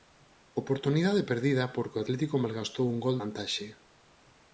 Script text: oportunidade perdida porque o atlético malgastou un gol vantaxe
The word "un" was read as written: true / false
true